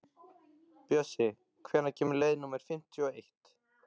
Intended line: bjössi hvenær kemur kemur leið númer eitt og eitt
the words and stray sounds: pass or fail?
fail